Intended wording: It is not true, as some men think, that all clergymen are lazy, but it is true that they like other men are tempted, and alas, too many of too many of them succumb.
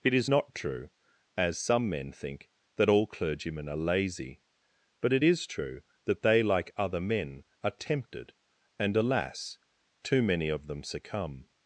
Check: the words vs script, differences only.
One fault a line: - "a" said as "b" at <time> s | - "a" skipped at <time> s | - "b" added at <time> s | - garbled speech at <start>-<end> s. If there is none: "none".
- "too many of" skipped at 10.7 s